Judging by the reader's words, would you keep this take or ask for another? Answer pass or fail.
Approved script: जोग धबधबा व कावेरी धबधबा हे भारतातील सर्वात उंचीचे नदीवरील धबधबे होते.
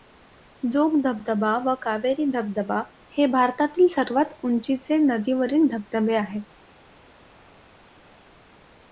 fail